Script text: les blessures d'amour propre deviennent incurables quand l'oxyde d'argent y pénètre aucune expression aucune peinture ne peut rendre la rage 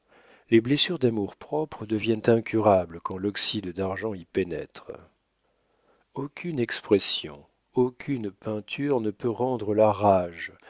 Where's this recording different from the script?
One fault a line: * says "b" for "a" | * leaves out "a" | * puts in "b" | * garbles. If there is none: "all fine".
all fine